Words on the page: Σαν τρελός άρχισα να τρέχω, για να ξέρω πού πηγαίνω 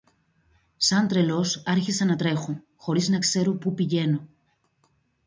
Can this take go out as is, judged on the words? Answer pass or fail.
fail